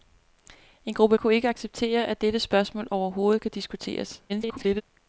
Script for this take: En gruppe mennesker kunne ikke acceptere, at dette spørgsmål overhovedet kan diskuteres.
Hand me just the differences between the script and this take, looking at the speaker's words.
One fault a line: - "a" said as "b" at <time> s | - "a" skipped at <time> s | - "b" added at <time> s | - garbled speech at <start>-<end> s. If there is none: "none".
- "mennesker" skipped at 1.2 s
- garbled speech at 4.3-4.8 s